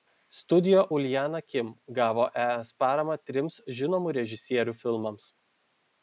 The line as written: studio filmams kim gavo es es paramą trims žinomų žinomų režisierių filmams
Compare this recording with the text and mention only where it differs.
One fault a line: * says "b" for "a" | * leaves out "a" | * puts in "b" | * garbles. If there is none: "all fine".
* says "uljana" for "filmams"
* leaves out "es"
* leaves out "žinomų"